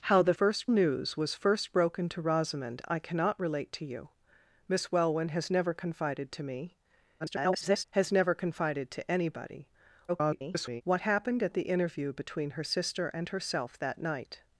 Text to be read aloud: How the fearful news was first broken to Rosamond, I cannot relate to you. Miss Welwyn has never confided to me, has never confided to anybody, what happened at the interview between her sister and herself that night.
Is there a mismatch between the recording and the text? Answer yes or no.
yes